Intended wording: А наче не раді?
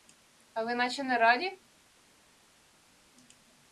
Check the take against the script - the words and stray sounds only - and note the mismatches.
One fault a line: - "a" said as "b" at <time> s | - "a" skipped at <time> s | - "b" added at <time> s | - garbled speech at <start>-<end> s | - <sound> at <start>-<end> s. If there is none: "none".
- "ви" added at 0.6 s